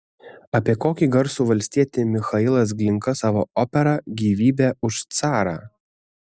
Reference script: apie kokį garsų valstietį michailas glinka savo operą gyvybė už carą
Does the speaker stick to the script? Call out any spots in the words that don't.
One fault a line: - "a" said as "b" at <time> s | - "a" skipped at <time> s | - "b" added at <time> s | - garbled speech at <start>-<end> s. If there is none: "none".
none